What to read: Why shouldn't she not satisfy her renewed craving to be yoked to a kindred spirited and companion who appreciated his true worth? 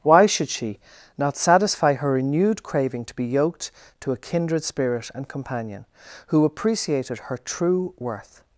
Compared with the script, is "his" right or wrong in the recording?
wrong